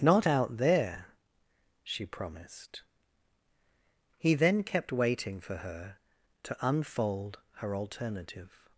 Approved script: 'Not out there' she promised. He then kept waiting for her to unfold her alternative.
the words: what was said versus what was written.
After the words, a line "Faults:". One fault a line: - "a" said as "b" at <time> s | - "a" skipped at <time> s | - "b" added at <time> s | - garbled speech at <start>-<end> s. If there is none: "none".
'Not out there' she promised. He then kept waiting for her to unfold her alternative.
Faults:
none